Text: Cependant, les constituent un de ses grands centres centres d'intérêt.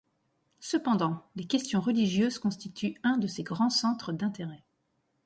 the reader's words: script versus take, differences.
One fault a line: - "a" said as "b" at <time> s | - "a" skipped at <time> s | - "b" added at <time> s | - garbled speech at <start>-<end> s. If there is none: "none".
- "questions religieuses" added at 1.4 s
- "centres" skipped at 4.1 s